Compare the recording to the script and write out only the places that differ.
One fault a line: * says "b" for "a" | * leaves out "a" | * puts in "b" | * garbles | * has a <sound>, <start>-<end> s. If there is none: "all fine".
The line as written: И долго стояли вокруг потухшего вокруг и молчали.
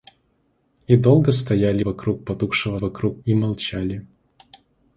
all fine